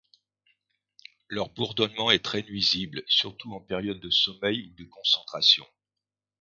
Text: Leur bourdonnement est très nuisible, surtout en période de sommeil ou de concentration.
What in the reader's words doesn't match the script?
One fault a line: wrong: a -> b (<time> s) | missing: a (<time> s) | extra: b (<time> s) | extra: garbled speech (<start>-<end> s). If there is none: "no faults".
no faults